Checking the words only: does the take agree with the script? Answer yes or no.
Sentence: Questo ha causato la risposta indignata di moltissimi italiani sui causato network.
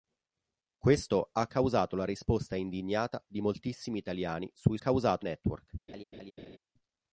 yes